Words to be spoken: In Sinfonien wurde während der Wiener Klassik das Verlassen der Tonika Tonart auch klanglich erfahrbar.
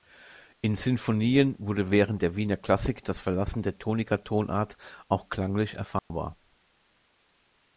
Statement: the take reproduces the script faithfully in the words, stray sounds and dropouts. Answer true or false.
false